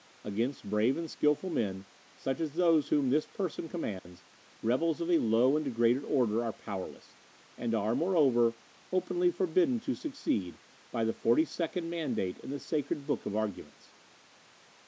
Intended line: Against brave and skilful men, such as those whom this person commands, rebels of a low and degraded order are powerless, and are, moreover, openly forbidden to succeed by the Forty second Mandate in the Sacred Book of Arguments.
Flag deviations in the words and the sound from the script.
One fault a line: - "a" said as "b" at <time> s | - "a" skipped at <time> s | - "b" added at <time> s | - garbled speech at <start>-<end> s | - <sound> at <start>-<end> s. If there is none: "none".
- dropout at 4.0-4.1 s